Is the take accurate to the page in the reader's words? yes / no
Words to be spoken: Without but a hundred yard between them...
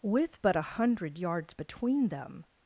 no